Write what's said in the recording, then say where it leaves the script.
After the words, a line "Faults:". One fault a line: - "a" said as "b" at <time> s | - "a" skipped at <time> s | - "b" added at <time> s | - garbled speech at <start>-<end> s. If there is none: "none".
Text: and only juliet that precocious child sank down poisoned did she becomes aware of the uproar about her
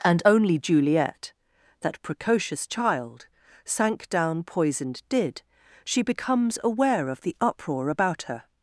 and only juliet that precocious child sank down poisoned did she becomes aware of the uproar about her
Faults:
none